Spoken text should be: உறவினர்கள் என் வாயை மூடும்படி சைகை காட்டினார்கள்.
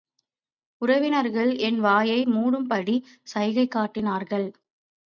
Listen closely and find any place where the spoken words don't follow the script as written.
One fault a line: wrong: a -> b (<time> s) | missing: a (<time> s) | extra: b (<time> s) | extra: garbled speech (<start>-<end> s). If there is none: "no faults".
no faults